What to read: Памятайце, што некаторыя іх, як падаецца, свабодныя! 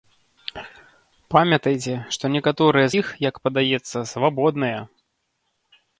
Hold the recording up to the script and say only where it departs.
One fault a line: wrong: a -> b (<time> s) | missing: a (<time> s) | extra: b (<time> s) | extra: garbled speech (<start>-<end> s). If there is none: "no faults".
no faults